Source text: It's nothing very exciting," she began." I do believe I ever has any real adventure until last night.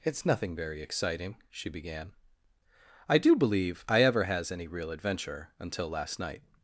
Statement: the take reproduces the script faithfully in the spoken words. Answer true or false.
true